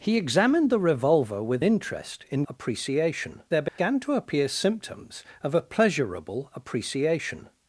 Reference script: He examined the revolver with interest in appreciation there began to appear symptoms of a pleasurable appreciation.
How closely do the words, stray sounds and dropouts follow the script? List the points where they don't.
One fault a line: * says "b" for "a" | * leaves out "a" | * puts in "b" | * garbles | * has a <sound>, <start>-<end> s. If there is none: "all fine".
* has a dropout, 3.7-3.8 s